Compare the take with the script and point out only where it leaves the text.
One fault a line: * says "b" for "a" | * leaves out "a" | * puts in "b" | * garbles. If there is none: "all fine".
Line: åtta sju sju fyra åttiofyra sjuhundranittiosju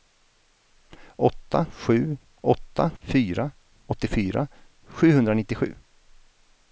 * says "åtta" for "sju"